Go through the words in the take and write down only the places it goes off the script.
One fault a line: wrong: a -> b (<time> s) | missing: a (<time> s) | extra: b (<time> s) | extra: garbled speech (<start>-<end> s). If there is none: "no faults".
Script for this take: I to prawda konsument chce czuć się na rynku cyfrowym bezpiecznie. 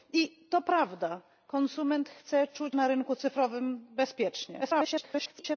missing: się (2.8 s)
extra: garbled speech (4.6-5.6 s)